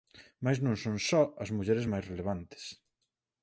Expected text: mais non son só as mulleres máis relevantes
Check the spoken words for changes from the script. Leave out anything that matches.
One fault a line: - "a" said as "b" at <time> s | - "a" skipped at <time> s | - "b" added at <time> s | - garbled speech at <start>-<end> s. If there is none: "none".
none